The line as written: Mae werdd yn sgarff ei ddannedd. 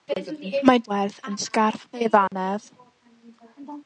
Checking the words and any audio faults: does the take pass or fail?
fail